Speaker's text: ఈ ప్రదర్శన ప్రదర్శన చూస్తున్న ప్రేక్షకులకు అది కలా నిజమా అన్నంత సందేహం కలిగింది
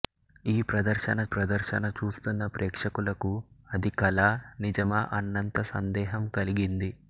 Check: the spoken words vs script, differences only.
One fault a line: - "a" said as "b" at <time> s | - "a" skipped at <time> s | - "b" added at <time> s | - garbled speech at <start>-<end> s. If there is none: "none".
none